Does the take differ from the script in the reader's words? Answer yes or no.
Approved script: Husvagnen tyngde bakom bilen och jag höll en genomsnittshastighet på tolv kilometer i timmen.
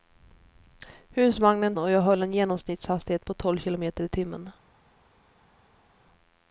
yes